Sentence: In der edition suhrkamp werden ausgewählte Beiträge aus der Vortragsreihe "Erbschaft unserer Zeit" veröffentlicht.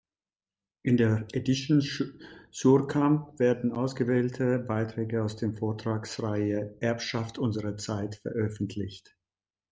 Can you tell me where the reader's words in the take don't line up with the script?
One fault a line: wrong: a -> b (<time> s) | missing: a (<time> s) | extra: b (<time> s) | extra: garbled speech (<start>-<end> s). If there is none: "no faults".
no faults